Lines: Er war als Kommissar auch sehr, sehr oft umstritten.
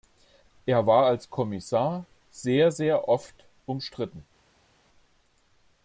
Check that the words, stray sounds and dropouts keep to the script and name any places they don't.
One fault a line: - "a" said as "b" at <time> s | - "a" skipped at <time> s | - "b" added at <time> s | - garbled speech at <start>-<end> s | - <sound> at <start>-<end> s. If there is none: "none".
- "auch" skipped at 2.0 s